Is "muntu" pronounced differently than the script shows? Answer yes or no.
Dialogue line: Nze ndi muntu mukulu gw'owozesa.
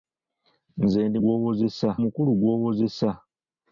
yes